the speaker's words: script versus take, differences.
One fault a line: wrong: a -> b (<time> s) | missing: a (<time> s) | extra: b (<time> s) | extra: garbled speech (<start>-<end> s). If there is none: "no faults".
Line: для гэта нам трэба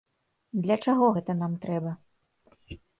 extra: чаго (0.8 s)